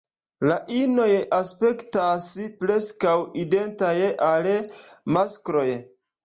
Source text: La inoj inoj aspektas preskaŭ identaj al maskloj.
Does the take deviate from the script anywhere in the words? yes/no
yes